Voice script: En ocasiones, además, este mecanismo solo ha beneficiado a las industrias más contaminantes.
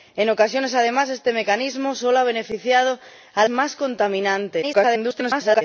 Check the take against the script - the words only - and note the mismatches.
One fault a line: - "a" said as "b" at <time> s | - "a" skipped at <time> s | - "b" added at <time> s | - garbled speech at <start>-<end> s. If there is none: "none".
- "las industrias" skipped at 3.5 s
- garbled speech at 4.6-5.6 s